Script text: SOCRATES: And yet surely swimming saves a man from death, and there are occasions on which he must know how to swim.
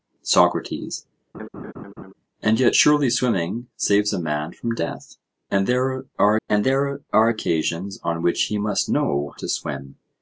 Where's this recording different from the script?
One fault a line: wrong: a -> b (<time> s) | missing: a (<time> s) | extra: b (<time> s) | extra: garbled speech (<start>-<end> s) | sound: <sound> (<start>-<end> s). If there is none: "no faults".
sound: laugh (1.3-2.1 s)
extra: and there are (6.5 s)
missing: how (9.3 s)